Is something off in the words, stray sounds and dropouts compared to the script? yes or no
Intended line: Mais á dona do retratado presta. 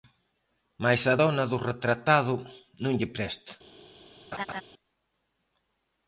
yes